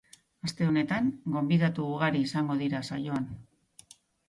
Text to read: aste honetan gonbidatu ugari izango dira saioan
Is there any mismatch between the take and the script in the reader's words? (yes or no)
no